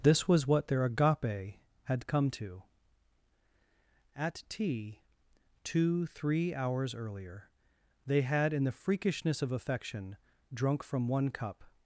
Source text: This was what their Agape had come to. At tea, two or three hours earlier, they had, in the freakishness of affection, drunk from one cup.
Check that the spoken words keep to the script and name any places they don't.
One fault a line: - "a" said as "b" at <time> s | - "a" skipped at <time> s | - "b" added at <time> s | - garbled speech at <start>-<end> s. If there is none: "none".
- "or" skipped at 6.1 s